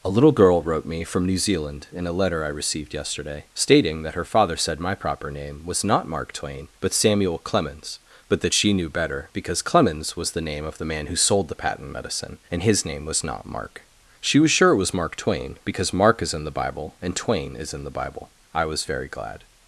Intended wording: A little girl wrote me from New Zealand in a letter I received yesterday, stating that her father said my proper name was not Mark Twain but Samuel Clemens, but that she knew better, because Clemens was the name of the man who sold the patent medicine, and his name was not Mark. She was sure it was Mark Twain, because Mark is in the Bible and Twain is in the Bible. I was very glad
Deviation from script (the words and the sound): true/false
false